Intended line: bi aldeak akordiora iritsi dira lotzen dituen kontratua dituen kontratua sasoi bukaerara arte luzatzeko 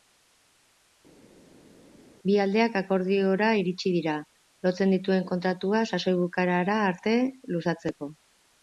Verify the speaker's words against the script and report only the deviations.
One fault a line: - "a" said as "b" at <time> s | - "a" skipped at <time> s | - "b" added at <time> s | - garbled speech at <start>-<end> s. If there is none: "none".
- "dituen kontratua" skipped at 5.8 s